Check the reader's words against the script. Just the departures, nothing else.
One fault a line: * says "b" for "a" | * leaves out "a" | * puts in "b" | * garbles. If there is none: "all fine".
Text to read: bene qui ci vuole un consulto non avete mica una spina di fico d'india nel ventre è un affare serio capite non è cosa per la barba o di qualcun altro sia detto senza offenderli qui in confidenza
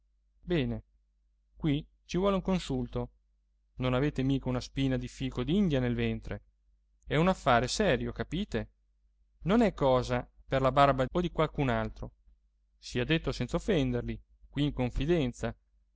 all fine